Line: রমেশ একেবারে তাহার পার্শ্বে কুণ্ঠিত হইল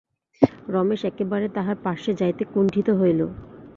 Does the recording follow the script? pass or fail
fail